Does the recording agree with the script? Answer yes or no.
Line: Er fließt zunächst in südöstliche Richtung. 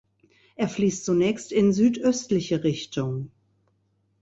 yes